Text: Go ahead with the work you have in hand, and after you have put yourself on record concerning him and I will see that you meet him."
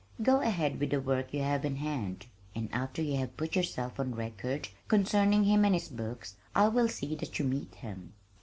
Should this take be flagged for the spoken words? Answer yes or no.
yes